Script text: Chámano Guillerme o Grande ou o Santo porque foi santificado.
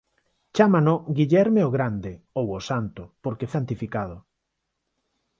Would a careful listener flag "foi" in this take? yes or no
yes